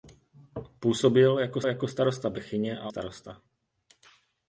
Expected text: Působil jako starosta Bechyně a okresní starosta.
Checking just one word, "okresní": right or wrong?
wrong